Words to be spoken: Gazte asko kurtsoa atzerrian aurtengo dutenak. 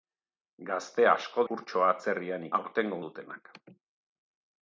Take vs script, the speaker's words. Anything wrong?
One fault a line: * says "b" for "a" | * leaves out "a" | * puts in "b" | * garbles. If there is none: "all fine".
all fine